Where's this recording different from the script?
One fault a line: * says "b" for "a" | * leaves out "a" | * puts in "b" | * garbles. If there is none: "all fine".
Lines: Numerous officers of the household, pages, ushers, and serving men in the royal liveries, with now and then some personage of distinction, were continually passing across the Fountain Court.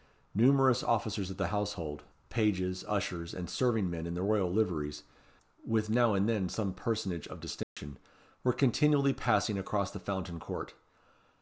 all fine